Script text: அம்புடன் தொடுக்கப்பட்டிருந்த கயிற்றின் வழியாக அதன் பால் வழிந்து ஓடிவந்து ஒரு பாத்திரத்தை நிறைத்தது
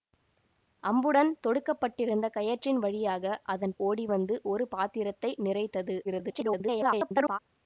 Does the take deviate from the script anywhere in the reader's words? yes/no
yes